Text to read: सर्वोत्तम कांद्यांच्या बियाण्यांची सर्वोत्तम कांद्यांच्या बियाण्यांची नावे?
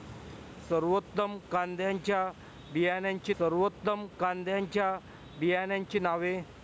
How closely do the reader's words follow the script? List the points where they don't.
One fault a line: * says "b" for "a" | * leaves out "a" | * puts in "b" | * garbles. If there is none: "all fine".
all fine